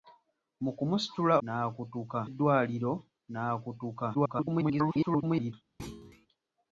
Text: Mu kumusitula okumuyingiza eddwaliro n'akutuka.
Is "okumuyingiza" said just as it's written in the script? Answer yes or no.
no